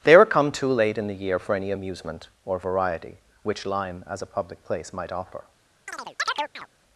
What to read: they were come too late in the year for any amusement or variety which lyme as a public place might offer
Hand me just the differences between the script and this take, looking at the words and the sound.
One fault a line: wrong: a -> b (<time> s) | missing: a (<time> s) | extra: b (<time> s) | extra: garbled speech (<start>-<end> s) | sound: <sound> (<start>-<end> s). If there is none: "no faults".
sound: chirp (5.9-6.7 s)